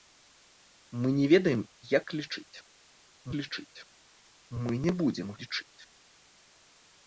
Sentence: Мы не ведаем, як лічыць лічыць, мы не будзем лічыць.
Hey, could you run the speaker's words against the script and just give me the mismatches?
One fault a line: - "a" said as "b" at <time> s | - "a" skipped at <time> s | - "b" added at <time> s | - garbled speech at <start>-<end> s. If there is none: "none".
none